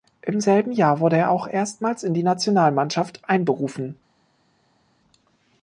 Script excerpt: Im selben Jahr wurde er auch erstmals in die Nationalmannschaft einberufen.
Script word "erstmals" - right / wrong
right